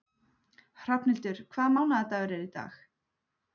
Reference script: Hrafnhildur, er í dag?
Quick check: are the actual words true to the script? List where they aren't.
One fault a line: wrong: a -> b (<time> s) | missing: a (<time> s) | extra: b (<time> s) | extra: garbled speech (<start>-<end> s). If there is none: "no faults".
extra: hvaða mánaðardagur (1.5 s)